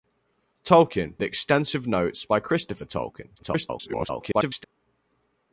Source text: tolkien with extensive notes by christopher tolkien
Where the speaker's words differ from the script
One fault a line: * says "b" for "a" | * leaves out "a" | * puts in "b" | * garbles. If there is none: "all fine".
* leaves out "with"
* garbles